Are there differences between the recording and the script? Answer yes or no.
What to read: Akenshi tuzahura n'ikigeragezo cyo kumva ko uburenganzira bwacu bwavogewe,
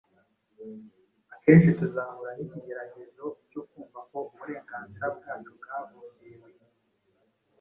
no